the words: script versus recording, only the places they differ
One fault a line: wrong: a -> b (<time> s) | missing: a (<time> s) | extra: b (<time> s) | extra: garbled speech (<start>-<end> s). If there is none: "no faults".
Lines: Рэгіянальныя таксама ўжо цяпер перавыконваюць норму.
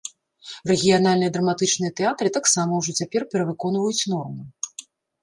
extra: драматычныя тэатры (1.4 s)